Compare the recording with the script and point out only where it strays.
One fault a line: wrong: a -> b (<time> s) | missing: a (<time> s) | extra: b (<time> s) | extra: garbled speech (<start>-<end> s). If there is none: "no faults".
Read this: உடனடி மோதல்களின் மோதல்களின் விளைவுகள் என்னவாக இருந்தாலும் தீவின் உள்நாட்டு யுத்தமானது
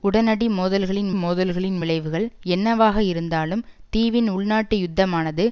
no faults